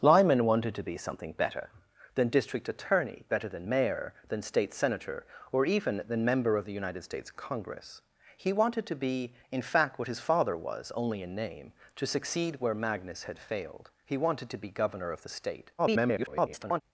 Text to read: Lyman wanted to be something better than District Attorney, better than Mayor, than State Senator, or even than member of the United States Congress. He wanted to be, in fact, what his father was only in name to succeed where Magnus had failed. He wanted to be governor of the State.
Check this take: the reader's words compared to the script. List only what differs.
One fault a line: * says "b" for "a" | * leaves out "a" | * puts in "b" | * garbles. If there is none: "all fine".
* garbles